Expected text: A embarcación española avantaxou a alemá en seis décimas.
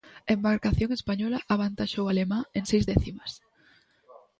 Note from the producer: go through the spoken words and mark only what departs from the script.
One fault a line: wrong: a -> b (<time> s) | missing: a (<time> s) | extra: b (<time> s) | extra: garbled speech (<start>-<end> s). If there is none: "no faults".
no faults